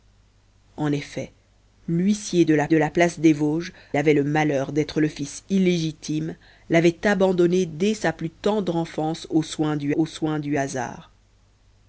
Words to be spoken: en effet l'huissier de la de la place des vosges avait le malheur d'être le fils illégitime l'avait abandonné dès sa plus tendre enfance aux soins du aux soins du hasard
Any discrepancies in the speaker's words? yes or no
no